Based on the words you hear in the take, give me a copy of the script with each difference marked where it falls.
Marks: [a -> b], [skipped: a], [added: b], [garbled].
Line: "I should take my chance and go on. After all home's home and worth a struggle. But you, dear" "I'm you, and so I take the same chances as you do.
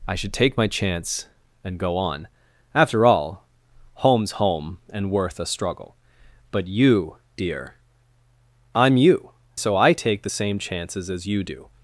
"I should take my chance and go on. After all home's home and worth a struggle. But you, dear" "I'm you, [skipped: and] so I take the same chances as you do.